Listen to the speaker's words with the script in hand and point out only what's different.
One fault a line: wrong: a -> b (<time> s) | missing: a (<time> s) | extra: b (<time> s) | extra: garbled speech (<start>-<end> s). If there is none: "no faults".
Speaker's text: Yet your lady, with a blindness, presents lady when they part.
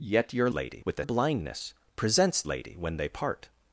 no faults